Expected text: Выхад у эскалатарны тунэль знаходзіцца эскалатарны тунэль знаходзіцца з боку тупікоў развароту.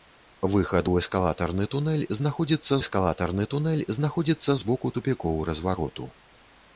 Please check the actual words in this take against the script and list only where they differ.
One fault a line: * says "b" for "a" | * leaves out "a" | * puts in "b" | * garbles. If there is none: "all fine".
all fine